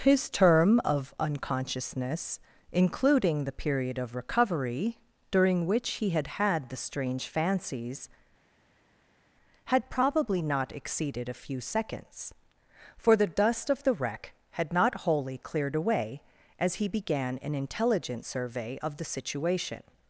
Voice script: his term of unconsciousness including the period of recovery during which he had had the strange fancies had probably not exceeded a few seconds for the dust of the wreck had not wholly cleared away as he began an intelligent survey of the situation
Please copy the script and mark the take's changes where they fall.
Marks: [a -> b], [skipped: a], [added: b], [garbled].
his term of unconsciousness including the period of recovery during which he had had the strange fancies had probably not exceeded a few seconds for the dust of the wreck had not wholly cleared away as he began an intelligent survey of the situation